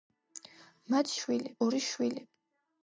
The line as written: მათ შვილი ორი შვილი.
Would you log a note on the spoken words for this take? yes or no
no